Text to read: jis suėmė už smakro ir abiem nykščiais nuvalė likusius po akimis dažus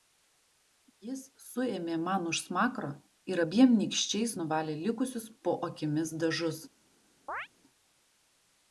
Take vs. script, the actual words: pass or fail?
fail